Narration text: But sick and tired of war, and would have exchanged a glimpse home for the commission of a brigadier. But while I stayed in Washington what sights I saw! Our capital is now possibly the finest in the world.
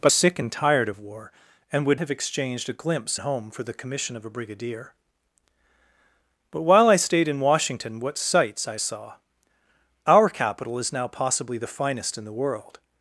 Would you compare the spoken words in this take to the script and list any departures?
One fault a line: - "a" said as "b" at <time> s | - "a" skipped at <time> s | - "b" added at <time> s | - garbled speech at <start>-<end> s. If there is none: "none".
none